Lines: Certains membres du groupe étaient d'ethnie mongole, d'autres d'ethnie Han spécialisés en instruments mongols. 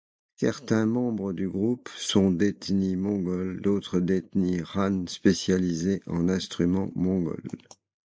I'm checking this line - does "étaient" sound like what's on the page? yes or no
no